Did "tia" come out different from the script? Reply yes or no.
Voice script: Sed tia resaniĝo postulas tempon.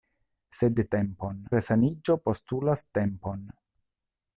yes